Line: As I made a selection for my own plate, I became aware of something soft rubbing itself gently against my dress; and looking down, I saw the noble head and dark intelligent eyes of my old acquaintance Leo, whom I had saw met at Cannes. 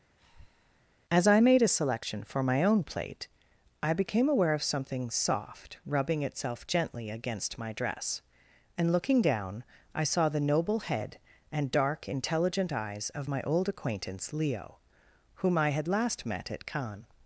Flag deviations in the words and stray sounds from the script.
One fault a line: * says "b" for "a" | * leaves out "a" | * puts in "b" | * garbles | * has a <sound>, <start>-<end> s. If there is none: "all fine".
* has a breath, 0.2-0.8 s
* says "last" for "saw"